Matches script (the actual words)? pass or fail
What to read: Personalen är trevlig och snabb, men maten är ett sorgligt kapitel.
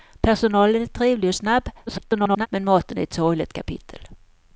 fail